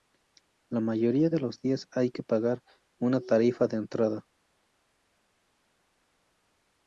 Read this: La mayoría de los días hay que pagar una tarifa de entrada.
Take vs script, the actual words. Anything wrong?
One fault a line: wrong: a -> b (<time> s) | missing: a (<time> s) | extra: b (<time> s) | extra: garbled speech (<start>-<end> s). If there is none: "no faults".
no faults